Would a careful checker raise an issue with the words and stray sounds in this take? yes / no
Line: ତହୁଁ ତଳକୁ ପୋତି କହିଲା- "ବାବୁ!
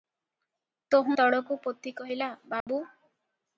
yes